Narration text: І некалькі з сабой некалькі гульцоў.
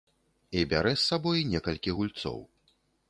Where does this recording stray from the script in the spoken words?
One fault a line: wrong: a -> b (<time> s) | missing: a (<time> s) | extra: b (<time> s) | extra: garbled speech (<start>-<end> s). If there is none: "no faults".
wrong: некалькі -> бярэ (0.7 s)